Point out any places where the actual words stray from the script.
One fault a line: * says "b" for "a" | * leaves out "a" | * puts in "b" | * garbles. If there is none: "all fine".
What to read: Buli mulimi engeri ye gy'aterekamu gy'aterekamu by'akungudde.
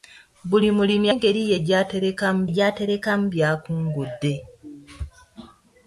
all fine